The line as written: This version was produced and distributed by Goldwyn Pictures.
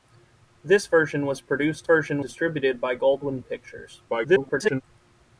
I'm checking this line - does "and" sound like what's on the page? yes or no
no